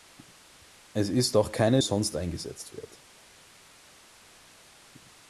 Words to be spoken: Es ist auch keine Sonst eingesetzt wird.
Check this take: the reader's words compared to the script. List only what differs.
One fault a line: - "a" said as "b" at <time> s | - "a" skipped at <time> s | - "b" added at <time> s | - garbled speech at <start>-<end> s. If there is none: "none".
none